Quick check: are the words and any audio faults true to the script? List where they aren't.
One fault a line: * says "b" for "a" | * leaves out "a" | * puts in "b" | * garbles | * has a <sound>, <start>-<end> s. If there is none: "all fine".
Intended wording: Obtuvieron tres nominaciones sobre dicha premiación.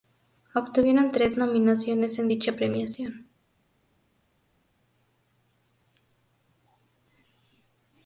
* says "en" for "sobre"